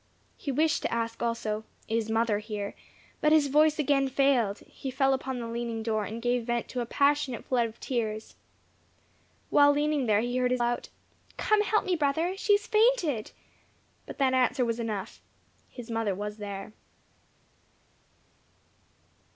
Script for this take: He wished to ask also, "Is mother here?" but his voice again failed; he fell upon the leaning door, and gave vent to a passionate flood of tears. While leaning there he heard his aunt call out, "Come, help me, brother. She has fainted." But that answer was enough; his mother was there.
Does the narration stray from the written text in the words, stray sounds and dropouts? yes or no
yes